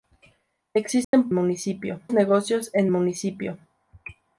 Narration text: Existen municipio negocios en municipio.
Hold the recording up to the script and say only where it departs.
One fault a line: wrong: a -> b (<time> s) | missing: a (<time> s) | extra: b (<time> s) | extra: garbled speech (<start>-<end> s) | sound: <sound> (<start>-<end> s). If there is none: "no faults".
sound: dropout (1.0-1.1 s)